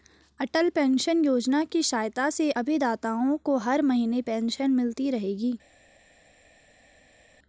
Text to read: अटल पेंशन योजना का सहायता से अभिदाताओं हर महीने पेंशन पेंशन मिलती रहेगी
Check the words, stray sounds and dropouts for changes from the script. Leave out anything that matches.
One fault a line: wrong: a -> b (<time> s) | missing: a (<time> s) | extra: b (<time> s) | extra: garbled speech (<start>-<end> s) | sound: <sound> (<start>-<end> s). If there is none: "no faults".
wrong: का -> की (1.6 s)
extra: को (3.4 s)
missing: पेंशन (4.7 s)